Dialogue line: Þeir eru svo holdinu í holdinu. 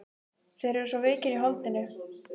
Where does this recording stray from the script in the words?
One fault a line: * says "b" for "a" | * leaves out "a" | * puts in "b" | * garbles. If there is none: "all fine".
* says "veikir" for "holdinu"